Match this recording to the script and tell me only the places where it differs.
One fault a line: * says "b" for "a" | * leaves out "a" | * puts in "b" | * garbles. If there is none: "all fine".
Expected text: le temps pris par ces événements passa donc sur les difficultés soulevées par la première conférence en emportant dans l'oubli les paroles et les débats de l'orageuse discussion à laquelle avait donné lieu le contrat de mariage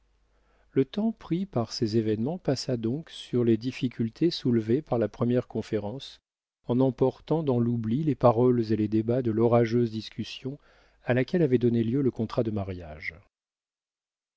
all fine